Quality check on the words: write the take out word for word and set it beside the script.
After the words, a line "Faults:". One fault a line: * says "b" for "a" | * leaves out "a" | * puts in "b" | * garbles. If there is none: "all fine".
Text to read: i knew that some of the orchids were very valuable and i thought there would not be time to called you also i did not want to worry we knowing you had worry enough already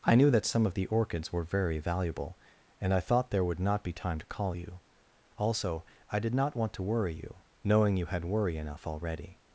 i knew that some of the orchids were very valuable and i thought there would not be time to call you also i did not want to worry you knowing you had worry enough already
Faults:
* says "call" for "called"
* says "you" for "we"